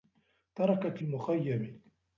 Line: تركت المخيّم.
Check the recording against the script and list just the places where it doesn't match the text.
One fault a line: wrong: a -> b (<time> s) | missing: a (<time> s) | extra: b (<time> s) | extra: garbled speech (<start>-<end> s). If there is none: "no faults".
no faults